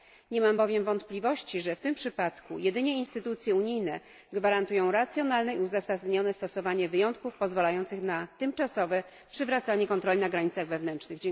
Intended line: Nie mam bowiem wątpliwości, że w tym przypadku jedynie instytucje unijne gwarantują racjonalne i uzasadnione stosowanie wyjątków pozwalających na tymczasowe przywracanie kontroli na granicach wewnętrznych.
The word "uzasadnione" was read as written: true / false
true